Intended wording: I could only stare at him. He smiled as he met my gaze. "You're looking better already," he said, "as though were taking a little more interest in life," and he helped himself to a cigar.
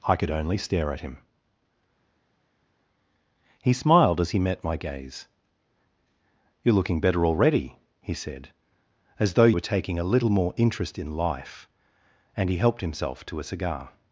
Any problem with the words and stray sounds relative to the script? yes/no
no